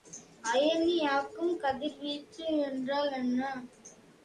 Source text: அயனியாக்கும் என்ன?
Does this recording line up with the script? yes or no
no